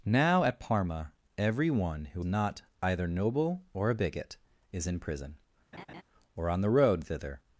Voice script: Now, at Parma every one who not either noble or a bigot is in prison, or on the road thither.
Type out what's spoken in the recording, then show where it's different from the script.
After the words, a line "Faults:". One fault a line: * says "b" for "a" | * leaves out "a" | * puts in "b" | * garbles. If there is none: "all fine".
Now, at Parma every one who not either noble or a bigot is in prison, or on the road thither.
Faults:
all fine